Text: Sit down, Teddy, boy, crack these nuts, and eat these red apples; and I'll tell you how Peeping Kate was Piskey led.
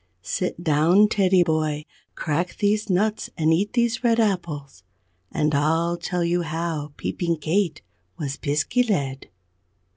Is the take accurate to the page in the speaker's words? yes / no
yes